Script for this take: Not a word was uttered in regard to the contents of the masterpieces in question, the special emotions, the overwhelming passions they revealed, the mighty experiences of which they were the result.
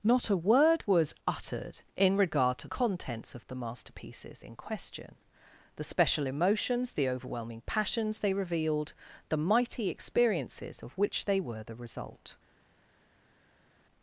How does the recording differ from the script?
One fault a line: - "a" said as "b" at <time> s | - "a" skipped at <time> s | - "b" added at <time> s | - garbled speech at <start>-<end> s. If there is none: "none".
- "the" skipped at 2.7 s